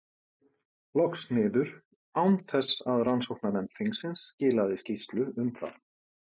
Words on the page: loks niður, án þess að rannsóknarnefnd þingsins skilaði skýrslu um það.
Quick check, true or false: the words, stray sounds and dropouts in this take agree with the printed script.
true